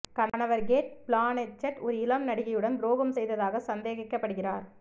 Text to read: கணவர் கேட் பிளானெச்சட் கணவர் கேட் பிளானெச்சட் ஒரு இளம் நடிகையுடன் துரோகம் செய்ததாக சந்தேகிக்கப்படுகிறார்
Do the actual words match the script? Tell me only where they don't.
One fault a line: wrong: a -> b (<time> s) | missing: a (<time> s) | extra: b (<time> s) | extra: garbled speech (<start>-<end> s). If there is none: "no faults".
missing: கணவர் கேட் பிளானெச்சட் (1.8 s)